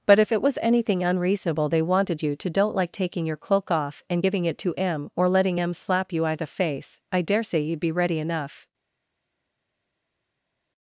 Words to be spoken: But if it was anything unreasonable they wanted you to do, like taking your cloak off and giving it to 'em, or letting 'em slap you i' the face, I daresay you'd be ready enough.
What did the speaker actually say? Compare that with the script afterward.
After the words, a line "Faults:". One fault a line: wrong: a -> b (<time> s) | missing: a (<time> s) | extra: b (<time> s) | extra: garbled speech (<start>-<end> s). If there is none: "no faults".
But if it was anything unreasonable they wanted you to don't, like taking your cloak off and giving it to 'em, or letting 'em slap you i' the face, I daresay you'd be ready enough.
Faults:
wrong: do -> don't (2.5 s)